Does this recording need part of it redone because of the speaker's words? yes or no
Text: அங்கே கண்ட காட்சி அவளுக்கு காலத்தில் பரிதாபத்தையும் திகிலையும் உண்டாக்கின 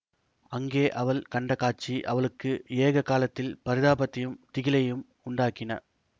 yes